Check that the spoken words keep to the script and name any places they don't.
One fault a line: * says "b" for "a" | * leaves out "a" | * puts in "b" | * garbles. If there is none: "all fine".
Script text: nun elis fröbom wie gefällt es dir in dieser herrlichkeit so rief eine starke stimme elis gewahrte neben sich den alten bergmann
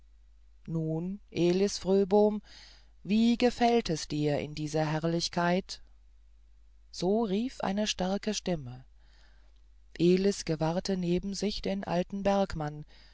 all fine